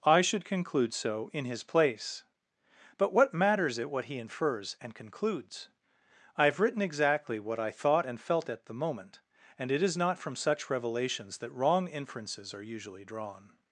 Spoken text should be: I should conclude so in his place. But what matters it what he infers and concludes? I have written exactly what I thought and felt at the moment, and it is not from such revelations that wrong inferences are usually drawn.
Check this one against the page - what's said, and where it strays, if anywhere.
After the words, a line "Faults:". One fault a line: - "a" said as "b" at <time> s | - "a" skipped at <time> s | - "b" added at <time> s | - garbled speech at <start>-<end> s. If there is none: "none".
I should conclude so in his place. But what matters it what he infers and concludes? I have written exactly what I thought and felt at the moment, and it is not from such revelations that wrong inferences are usually drawn.
Faults:
none